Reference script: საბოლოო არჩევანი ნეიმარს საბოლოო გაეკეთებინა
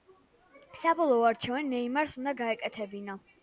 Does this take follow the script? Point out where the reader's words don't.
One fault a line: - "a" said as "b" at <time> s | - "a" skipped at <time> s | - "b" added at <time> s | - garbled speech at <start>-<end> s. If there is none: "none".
- "საბოლოო" said as "უნდა" at 2.2 s